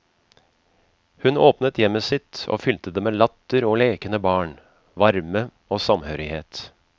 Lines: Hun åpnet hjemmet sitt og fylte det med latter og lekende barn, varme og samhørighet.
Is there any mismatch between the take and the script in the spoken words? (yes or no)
no